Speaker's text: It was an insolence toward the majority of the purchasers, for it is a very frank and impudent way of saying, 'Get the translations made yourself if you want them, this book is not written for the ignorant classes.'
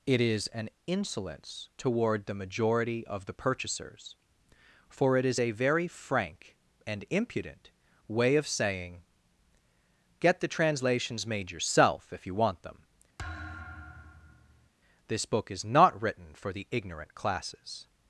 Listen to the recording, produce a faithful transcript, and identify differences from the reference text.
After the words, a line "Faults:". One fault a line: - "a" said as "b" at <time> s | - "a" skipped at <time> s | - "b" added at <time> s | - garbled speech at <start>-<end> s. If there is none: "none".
It is an insolence toward the majority of the purchasers, for it is a very frank and impudent way of saying, 'Get the translations made yourself if you want them, this book is not written for the ignorant classes.'
Faults:
- "was" said as "is" at 0.2 s